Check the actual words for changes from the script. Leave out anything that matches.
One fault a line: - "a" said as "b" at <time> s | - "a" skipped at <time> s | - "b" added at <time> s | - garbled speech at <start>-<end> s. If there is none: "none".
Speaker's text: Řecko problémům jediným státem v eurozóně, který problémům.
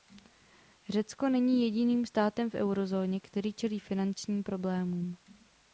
- "problémům" said as "není" at 1.3 s
- "čelí finančním" added at 3.5 s